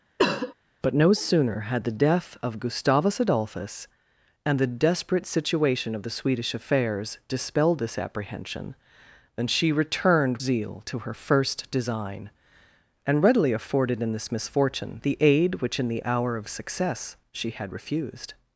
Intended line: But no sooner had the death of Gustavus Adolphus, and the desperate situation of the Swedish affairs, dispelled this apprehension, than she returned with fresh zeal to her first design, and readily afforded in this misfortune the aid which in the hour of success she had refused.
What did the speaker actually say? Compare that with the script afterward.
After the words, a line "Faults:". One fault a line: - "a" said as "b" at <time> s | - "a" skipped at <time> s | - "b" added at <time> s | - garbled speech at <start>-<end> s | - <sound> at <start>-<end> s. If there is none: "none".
But no sooner had the death of Gustavus Adolphus, and the desperate situation of the Swedish affairs, dispelled this apprehension, than she returned zeal to her first design, and readily afforded in this misfortune the aid which in the hour of success she had refused.
Faults:
- cough at 0.2-0.5 s
- "with fresh" skipped at 10.4 s